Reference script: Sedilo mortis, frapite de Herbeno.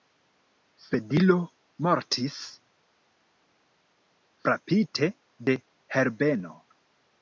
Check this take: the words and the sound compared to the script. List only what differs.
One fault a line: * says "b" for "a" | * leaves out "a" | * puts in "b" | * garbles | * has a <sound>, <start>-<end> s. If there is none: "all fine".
all fine